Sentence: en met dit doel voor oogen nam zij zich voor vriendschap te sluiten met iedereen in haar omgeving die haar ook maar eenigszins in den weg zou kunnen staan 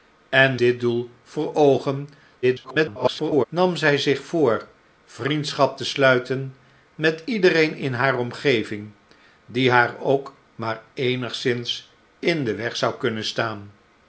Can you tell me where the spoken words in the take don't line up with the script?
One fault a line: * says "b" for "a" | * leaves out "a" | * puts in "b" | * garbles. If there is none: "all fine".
* leaves out "met"
* garbles